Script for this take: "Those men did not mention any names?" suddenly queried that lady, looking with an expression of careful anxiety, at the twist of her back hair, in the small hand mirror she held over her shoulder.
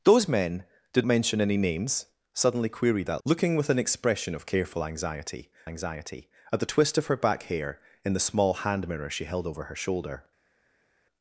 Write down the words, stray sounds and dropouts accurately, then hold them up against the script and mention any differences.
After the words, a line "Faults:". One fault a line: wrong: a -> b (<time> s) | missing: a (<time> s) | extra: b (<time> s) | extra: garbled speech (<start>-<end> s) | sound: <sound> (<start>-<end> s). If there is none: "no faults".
"Those men did mention any names?" suddenly queried that looking with an expression of careful anxiety anxiety, at the twist of her back hair, in the small hand mirror she held over her shoulder.
Faults:
missing: not (1.1 s)
missing: lady (3.2 s)
extra: anxiety (5.6 s)